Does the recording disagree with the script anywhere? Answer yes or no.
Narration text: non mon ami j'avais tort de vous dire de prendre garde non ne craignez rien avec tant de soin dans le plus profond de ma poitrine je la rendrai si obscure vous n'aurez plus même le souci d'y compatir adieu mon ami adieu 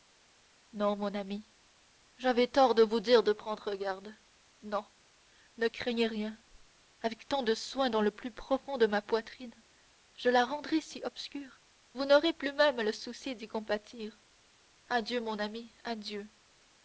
no